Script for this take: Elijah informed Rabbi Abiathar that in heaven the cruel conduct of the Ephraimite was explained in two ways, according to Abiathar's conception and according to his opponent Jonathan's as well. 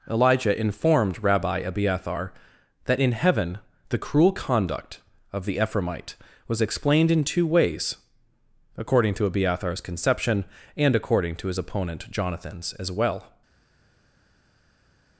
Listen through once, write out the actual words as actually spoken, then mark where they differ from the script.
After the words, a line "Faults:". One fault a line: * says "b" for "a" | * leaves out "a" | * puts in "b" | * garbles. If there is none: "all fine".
Elijah informed Rabbi Abiathar that in heaven the cruel conduct of the Ephraimite was explained in two ways, according to Abiathar's conception and according to his opponent Jonathan's as well.
Faults:
all fine